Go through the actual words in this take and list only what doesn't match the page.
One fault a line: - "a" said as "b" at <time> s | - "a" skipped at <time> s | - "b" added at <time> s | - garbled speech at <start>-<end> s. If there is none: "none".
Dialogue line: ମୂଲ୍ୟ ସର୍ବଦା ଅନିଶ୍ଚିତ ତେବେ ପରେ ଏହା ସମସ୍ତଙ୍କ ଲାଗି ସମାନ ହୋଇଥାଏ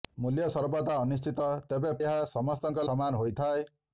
- "ପରେ" skipped at 1.9 s
- "ଲାଗି" skipped at 2.9 s